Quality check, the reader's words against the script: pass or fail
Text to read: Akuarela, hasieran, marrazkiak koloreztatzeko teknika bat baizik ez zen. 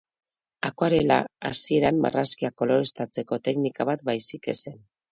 pass